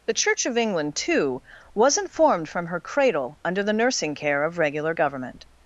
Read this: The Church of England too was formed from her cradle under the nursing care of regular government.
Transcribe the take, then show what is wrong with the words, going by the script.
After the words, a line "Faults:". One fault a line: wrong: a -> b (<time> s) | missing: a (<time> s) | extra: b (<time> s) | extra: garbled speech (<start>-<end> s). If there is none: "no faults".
The Church of England too wasn't formed from her cradle under the nursing care of regular government.
Faults:
wrong: was -> wasn't (1.7 s)